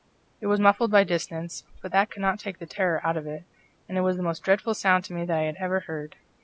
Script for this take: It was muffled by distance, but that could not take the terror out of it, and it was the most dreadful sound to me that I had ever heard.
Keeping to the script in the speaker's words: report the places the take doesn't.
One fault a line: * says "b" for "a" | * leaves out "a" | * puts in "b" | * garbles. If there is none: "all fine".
all fine